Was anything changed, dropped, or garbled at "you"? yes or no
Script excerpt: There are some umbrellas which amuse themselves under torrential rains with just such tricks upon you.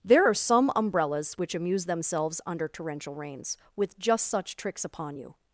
no